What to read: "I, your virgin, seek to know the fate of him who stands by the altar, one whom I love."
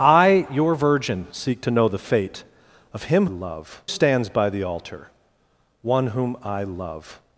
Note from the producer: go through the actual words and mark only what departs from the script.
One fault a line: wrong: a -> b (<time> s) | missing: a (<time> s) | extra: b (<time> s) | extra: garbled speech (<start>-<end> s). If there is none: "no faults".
wrong: who -> love (3.2 s)